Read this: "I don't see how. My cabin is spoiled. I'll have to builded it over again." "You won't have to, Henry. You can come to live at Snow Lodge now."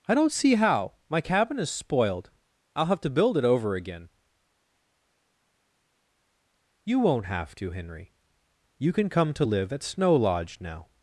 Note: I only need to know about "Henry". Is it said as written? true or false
true